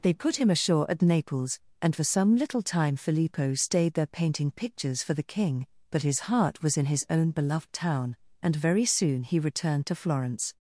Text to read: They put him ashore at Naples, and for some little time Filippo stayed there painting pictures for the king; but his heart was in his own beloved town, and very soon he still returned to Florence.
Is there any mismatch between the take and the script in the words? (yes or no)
yes